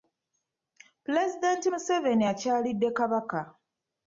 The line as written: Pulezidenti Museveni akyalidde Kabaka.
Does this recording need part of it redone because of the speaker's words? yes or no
no